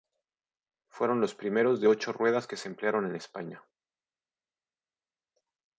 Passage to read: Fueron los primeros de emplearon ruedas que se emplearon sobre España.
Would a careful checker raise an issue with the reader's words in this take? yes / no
yes